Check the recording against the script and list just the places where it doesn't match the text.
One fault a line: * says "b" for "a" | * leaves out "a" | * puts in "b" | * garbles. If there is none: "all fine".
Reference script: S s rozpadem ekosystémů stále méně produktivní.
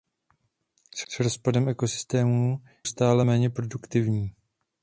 all fine